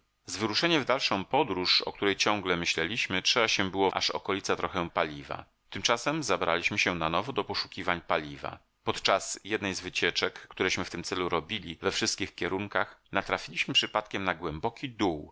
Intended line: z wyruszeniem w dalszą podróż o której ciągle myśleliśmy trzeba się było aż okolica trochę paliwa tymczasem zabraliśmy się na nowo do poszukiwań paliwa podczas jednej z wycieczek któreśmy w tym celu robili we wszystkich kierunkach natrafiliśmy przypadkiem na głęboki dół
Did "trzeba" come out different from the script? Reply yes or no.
no